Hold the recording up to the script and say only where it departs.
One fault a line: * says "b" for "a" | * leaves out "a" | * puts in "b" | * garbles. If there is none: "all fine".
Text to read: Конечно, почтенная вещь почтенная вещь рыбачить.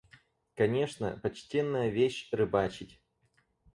* leaves out "почтенная вещь"